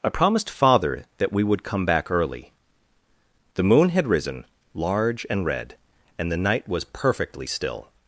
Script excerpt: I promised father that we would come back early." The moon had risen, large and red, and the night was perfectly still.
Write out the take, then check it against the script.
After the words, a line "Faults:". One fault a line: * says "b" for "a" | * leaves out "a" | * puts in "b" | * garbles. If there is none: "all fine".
I promised father that we would come back early." The moon had risen, large and red, and the night was perfectly still.
Faults:
all fine